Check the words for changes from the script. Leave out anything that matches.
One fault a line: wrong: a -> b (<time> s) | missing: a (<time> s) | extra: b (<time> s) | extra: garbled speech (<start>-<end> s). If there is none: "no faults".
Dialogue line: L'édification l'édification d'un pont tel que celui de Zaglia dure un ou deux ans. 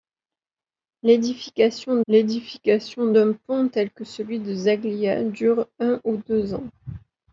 no faults